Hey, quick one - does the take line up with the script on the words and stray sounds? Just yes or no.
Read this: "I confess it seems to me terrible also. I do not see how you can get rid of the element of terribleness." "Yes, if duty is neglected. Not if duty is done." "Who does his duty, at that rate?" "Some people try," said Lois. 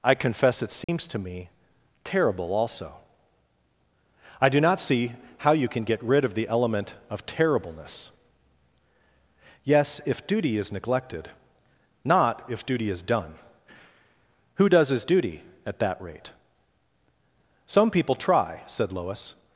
no